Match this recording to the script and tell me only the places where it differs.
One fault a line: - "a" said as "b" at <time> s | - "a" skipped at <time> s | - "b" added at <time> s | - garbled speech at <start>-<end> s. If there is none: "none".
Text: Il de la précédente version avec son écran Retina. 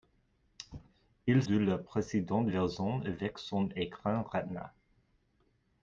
none